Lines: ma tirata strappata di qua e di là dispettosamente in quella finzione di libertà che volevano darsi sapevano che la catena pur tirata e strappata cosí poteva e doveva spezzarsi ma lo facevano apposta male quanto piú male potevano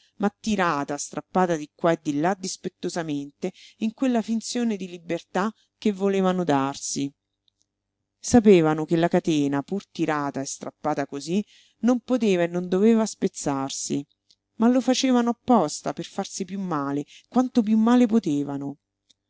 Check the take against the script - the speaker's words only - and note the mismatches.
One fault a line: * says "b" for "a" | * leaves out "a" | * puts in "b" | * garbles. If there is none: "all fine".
* puts in "non"
* puts in "non"
* puts in "per farsi piú"